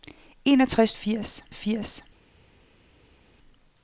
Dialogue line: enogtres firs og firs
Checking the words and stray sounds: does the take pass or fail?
pass